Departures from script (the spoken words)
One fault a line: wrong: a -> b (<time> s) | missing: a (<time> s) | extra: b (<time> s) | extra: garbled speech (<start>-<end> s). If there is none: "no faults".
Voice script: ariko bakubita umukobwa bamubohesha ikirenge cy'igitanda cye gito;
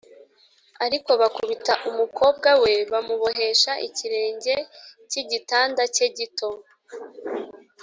extra: we (2.6 s)